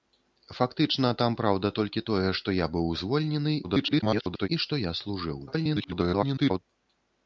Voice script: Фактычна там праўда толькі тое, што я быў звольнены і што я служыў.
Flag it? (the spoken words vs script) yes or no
yes